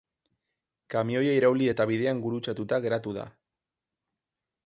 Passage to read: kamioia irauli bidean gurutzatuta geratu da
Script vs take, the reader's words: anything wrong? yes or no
yes